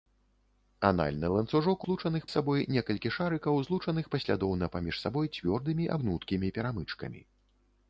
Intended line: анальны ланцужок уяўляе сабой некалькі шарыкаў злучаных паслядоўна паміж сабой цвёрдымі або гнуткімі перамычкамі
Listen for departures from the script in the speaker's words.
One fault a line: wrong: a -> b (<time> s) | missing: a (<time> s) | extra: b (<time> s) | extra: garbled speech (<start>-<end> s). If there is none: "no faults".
wrong: уяўляе -> злучаных (1.9 s)
missing: або (5.9 s)